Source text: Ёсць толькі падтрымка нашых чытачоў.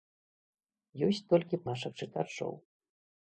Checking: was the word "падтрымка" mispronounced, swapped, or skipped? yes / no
yes